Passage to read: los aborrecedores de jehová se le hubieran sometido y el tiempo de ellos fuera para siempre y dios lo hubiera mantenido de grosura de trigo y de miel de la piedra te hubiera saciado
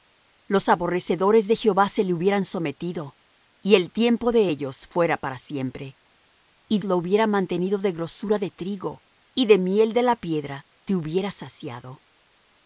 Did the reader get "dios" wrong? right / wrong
wrong